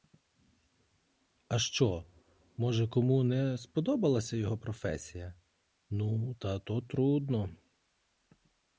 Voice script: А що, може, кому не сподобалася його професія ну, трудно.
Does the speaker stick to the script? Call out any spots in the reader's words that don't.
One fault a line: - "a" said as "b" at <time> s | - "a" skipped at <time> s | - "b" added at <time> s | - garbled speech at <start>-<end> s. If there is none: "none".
- "та то" added at 6.3 s